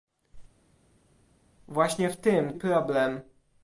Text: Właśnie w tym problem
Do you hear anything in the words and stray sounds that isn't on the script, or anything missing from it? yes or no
no